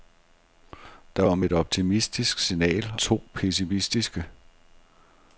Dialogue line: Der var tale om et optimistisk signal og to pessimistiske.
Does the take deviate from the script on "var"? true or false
true